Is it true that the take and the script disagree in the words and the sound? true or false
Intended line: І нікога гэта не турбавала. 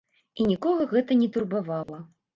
true